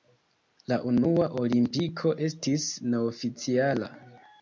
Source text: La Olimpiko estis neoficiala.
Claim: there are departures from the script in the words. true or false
true